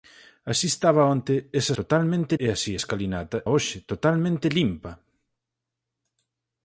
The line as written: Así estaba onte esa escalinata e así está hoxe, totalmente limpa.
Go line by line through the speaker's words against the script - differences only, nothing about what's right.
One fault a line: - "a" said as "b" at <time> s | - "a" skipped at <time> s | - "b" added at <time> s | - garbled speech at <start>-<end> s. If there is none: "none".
- "escalinata" said as "totalmente" at 1.8 s
- "está" said as "escalinata" at 2.8 s